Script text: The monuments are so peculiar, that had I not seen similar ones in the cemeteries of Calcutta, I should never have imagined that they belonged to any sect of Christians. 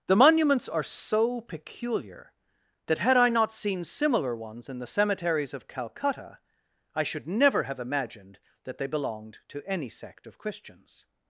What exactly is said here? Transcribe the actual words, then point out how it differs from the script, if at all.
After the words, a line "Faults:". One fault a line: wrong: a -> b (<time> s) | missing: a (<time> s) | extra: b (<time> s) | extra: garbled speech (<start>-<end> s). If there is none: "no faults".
The monuments are so peculiar, that had I not seen similar ones in the cemeteries of Calcutta, I should never have imagined that they belonged to any sect of Christians.
Faults:
no faults